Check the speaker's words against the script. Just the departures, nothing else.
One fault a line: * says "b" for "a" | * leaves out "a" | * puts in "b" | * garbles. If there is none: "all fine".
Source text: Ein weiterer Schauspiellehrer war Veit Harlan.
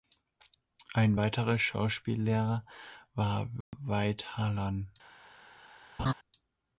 all fine